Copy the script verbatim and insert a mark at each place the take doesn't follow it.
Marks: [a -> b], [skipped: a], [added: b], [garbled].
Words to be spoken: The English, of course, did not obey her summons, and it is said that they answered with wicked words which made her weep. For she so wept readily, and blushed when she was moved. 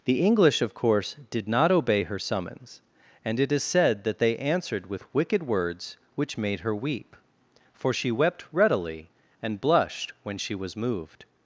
The English, of course, did not obey her summons, and it is said that they answered with wicked words which made her weep. For she [skipped: so] wept readily, and blushed when she was moved.